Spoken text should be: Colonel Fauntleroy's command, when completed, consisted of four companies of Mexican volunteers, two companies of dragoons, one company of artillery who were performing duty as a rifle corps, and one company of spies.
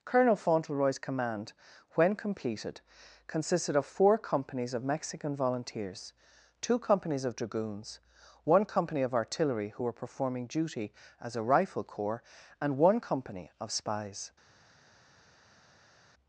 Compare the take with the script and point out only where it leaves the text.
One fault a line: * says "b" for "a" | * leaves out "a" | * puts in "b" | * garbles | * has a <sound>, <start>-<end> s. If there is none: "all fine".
all fine